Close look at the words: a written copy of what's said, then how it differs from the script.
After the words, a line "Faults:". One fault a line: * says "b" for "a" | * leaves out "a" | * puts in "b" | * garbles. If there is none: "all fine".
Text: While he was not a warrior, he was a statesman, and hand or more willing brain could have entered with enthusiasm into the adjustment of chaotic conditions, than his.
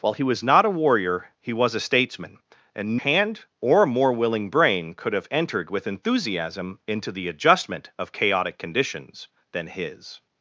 While he was not a warrior, he was a statesman, and hand or more willing brain could have entered with enthusiasm into the adjustment of chaotic conditions, than his.
Faults:
all fine